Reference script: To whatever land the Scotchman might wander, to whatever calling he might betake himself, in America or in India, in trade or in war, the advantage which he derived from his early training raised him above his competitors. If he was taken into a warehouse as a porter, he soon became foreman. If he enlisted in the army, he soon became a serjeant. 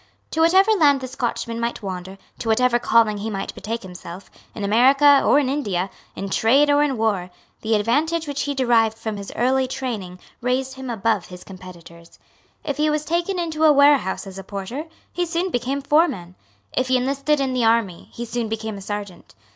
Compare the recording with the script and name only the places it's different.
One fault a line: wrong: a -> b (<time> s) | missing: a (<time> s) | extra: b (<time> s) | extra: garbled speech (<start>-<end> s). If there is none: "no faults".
no faults